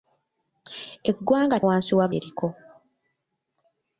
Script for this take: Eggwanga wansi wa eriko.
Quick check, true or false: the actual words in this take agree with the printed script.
true